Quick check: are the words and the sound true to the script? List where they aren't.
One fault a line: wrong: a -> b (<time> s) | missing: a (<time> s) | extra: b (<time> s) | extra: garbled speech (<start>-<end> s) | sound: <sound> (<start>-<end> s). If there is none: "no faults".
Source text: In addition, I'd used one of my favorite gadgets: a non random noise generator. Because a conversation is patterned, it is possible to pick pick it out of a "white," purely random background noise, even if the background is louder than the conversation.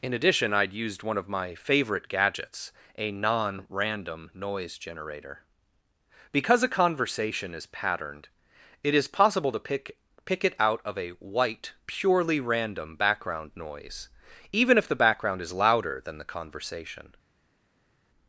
no faults